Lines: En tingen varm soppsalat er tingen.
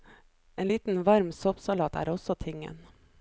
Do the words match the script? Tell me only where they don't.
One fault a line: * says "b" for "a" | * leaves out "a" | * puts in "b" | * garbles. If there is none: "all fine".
* says "liten" for "tingen"
* puts in "også"